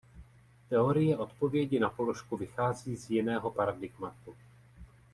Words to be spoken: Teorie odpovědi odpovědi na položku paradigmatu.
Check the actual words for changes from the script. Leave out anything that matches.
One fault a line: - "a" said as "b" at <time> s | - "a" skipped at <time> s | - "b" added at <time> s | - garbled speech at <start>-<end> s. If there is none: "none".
- "odpovědi" skipped at 1.8 s
- "vychází z jiného" added at 2.4 s